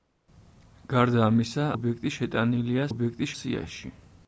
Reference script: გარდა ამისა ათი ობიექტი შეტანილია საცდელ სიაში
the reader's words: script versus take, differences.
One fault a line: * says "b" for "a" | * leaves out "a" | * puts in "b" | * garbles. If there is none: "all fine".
* leaves out "ათი"
* says "ობიექტი" for "საცდელ"